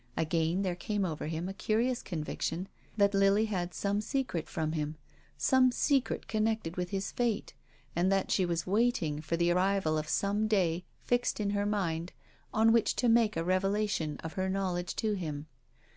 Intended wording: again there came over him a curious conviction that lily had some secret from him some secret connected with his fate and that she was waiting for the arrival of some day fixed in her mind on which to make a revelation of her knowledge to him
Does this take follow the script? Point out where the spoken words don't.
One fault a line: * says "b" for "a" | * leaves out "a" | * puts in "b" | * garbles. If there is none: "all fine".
all fine